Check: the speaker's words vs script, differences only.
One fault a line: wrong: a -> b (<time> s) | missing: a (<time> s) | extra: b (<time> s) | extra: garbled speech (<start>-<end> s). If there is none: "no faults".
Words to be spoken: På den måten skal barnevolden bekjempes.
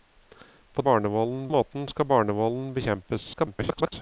wrong: den -> barnevolden (0.9 s)
extra: garbled speech (3.3-3.9 s)